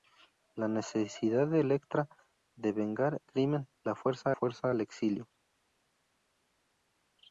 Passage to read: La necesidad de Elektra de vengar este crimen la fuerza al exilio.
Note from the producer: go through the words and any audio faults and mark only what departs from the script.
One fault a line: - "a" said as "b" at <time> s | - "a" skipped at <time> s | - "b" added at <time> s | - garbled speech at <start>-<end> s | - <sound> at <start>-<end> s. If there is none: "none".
- "este" skipped at 3.2 s
- "fuerza" added at 4.3 s